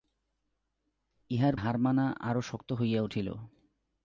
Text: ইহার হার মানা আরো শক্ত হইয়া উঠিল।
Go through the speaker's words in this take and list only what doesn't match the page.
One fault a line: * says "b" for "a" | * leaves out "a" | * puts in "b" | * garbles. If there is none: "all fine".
all fine